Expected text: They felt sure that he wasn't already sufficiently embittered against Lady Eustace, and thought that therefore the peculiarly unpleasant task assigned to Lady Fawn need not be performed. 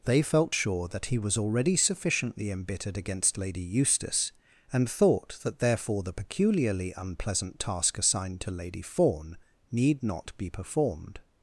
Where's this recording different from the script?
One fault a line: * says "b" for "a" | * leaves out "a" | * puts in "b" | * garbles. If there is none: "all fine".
* says "was" for "wasn't"